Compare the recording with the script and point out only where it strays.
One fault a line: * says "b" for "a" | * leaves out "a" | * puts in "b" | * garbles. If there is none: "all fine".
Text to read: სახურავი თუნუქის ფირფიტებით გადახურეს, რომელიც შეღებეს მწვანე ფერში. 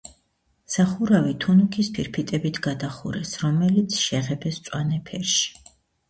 all fine